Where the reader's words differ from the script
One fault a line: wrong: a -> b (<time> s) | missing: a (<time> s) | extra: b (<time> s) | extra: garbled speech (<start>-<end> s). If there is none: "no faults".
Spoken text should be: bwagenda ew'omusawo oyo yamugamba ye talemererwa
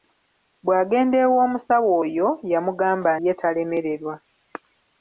no faults